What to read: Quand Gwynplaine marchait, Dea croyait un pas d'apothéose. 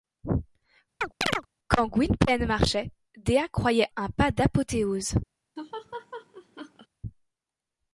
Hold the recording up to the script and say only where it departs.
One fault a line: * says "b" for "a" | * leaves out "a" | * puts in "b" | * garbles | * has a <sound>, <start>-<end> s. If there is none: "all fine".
* has a chirp, 1.0-1.5 s
* has a laugh, 5.6-6.9 s